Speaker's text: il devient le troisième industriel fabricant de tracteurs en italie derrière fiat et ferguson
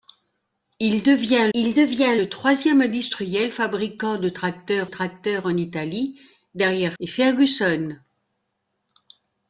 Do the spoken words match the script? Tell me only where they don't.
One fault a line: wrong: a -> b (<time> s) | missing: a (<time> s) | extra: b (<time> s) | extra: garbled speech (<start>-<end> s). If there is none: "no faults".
extra: il devient (1.5 s)
extra: tracteurs (4.8 s)
missing: fiat (6.9 s)